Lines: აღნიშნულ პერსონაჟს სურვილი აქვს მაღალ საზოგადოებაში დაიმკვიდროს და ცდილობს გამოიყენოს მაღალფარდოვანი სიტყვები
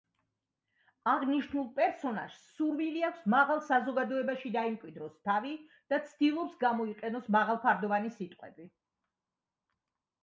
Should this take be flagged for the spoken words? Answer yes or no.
yes